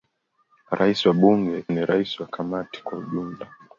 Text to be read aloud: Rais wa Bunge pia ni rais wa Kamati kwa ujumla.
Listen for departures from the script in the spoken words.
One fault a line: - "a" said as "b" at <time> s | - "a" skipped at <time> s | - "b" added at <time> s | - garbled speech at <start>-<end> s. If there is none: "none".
- "pia" skipped at 1.6 s